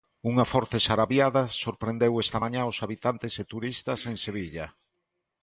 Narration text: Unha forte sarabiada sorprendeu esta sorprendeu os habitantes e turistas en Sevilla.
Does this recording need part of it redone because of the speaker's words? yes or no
yes